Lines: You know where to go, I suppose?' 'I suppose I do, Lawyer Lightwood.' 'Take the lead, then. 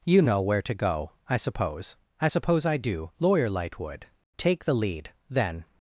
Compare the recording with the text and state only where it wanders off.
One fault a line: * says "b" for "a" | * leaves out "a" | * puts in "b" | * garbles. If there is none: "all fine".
all fine